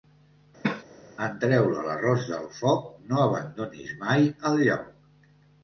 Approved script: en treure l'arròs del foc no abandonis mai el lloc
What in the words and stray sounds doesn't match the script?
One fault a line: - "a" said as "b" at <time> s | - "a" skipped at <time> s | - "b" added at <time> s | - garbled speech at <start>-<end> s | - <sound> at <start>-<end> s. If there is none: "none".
- cough at 0.6-0.8 s